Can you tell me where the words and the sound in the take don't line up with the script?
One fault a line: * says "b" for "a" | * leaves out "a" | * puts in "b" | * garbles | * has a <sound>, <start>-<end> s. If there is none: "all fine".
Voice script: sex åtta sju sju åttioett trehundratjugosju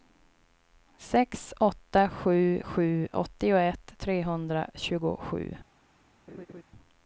* has a laugh, 6.3-6.6 s